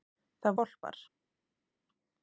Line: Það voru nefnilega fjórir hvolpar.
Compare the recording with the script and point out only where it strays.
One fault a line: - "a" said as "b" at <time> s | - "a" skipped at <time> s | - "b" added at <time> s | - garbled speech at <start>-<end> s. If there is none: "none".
- "voru nefnilega fjórir" skipped at 0.6 s